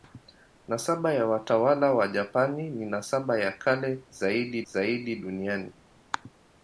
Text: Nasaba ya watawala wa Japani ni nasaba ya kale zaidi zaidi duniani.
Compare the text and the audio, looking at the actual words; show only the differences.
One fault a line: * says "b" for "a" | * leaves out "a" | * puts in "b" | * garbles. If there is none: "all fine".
all fine